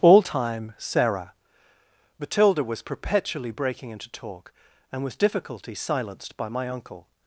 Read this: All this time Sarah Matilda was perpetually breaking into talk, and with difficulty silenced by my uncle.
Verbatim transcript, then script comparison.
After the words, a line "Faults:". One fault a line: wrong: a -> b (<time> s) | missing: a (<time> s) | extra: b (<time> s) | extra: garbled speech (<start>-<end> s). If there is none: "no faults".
All time Sarah Matilda was perpetually breaking into talk, and with difficulty silenced by my uncle.
Faults:
missing: this (0.2 s)